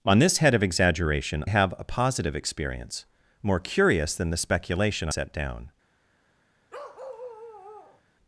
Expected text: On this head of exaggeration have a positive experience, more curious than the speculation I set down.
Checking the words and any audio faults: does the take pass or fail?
fail